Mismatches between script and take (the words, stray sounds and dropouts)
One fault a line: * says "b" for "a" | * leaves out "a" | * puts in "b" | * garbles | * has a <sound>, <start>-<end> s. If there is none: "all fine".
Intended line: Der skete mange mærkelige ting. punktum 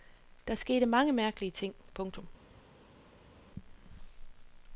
all fine